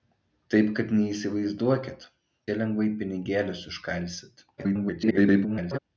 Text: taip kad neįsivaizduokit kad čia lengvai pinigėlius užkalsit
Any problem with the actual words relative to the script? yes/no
yes